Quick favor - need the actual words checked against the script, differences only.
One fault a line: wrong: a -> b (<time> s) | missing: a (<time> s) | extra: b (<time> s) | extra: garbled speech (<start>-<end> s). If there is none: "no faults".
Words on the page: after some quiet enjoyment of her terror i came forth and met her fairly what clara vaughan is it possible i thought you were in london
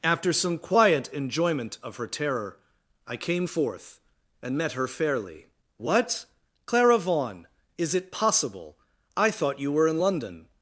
no faults